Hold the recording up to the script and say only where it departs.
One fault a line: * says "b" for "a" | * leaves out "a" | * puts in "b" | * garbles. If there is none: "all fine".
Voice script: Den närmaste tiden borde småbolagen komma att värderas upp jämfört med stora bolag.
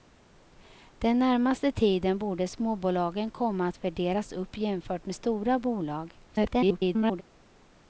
* garbles